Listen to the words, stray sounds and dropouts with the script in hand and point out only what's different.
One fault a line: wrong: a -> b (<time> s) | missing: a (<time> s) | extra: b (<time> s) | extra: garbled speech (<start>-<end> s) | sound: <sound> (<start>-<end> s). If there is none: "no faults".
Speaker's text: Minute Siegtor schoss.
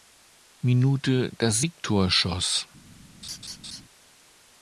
extra: das (1.4 s)
sound: laugh (3.2-3.8 s)